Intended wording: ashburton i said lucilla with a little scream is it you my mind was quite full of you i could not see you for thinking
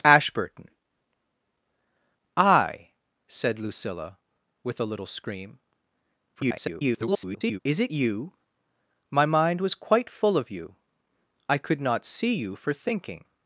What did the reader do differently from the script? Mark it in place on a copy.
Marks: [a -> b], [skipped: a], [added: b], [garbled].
ashburton i said lucilla with a little scream [garbled] is it you my mind was quite full of you i could not see you for thinking